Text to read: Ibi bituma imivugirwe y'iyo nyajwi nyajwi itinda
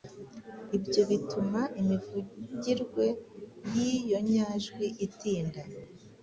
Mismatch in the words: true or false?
true